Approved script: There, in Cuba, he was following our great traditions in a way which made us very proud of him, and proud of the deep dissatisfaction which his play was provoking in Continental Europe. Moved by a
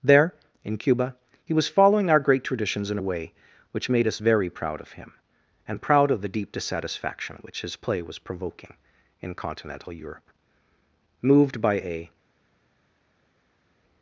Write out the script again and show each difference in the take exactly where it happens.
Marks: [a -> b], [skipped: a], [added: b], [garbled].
There, in Cuba, he was following our great traditions in a way which made us very proud of him, and proud of the deep dissatisfaction which his play was provoking in Continental Europe. Moved by a